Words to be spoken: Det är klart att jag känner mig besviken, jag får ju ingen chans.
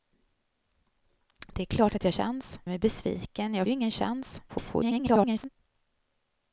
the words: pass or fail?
fail